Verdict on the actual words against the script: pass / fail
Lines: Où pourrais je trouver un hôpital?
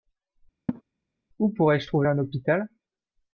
pass